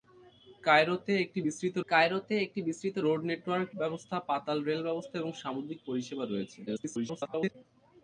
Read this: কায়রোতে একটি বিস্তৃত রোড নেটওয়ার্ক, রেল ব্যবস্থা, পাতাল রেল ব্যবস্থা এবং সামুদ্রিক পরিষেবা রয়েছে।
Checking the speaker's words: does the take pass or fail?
fail